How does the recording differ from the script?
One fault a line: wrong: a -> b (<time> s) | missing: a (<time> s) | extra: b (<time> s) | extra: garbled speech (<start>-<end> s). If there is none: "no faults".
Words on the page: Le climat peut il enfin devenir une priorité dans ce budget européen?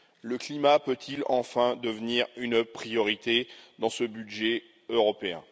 no faults